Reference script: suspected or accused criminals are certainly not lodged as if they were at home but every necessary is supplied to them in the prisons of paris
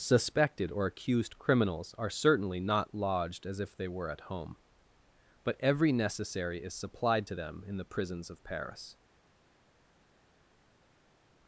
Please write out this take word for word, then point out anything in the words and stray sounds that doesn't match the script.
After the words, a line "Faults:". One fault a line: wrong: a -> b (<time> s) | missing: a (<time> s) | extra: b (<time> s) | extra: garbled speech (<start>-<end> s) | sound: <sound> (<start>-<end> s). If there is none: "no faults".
suspected or accused criminals are certainly not lodged as if they were at home but every necessary is supplied to them in the prisons of paris
Faults:
no faults